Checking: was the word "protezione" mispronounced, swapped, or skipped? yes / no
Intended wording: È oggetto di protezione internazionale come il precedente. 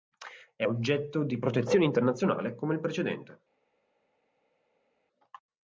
no